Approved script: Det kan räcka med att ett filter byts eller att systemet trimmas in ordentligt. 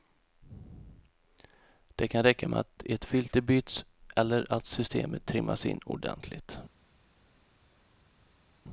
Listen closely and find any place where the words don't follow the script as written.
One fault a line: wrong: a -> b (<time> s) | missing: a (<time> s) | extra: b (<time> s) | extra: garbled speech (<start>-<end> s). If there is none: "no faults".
no faults